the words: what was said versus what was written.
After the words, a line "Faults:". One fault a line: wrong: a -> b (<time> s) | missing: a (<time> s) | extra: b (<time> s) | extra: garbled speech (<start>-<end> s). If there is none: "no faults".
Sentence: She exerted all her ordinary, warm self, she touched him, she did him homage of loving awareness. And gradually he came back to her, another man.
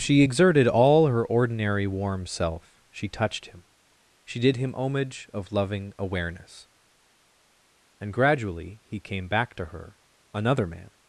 She exerted all her ordinary, warm self, she touched him, she did him homage of loving awareness. And gradually he came back to her, another man.
Faults:
no faults